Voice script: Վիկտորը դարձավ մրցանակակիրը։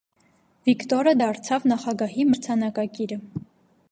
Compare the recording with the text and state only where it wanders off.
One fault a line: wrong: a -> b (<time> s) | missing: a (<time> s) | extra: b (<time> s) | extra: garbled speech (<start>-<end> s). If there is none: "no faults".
extra: նախագահի (1.7 s)